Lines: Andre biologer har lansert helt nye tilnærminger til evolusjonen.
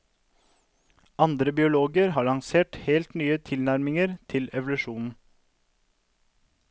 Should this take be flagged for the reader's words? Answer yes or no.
no